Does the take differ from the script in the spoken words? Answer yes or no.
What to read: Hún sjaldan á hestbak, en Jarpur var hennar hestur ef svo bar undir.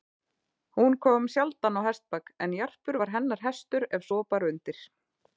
yes